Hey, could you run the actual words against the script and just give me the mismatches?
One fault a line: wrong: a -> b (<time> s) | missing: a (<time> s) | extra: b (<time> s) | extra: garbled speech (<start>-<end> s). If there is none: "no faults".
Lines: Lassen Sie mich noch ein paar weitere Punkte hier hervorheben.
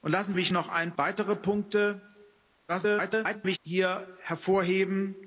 missing: Sie (0.3 s)
missing: paar (0.9 s)
extra: garbled speech (2.7-3.6 s)